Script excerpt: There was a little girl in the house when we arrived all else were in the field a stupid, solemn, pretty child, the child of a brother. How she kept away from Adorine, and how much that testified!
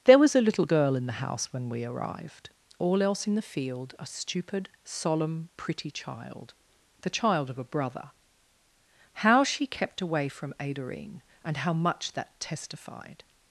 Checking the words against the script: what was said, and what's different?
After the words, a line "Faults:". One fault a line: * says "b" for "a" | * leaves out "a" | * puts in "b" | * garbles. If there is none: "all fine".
There was a little girl in the house when we arrived all else in the field a stupid, solemn, pretty child, the child of a brother. How she kept away from Adorine, and how much that testified!
Faults:
* leaves out "were"